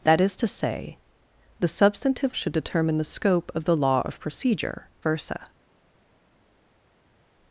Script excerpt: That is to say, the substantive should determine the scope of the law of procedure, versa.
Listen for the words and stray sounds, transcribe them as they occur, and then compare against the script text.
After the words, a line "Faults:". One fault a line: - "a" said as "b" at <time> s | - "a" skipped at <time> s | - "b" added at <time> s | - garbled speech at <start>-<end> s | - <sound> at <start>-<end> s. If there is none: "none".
That is to say, the substantive should determine the scope of the law of procedure, versa.
Faults:
none